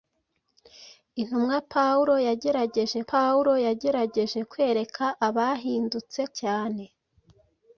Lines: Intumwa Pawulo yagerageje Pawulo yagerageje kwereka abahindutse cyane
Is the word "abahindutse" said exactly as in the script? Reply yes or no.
yes